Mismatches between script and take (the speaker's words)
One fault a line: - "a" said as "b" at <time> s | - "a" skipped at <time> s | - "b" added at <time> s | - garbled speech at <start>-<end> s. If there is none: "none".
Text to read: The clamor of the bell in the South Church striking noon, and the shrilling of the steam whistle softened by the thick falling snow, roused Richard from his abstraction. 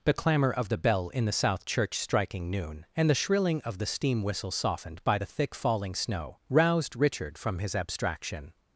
none